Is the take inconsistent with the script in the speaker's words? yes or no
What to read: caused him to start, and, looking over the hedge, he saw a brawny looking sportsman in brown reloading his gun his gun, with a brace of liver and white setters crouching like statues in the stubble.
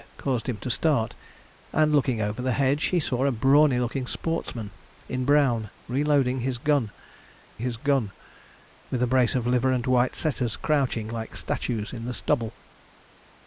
no